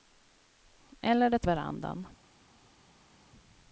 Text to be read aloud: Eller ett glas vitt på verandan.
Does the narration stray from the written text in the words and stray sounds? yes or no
yes